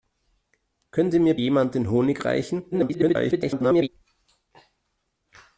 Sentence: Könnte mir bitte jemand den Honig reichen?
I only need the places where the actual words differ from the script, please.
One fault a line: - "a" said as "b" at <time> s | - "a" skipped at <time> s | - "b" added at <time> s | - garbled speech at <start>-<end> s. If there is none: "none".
- "bitte" skipped at 1.4 s
- garbled speech at 2.7-3.9 s